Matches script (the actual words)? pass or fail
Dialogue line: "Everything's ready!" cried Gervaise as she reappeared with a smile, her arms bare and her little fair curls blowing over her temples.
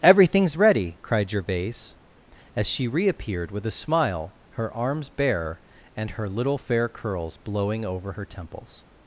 pass